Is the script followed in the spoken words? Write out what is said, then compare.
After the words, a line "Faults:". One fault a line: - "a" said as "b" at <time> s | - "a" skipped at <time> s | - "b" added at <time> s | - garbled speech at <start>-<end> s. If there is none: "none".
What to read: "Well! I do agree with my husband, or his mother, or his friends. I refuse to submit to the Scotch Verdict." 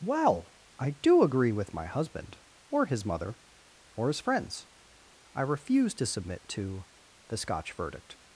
"Well! I do agree with my husband, or his mother, or his friends. I refuse to submit to the Scotch Verdict."
Faults:
none